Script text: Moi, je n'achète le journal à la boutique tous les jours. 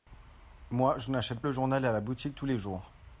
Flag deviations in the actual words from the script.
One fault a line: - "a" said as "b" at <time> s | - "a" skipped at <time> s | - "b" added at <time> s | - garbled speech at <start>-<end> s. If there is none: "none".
none